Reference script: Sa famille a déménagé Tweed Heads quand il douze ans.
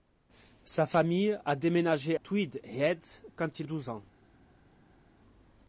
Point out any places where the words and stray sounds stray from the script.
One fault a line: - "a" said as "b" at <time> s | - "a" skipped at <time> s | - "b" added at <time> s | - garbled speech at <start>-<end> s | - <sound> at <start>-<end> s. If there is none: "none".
none